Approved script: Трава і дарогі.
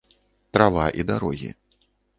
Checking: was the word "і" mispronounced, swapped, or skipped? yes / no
no